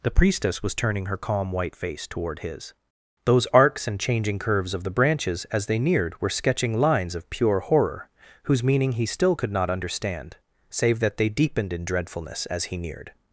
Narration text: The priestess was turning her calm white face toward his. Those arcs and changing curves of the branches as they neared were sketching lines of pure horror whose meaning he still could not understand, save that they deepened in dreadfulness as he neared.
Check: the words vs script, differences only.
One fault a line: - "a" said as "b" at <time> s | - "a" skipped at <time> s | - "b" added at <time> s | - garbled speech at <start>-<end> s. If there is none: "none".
none